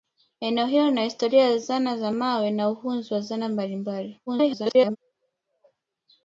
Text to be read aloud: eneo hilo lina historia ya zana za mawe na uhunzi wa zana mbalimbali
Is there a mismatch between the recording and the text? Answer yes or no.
yes